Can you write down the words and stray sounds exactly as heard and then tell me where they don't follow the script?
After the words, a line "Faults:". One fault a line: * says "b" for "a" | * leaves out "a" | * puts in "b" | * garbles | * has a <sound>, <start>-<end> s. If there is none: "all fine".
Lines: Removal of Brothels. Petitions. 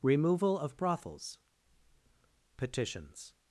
Removal of Brothels. Petitions.
Faults:
all fine